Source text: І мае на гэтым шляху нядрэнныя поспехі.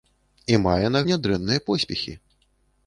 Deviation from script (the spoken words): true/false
true